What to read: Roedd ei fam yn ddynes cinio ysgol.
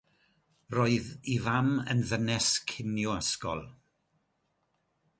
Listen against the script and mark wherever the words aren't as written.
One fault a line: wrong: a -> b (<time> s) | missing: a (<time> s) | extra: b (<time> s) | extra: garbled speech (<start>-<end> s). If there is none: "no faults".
no faults